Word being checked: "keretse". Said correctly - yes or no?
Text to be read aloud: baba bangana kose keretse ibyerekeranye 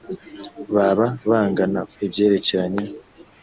no